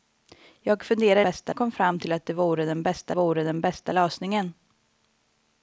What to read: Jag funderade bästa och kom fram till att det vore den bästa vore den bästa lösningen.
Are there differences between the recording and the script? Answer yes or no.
no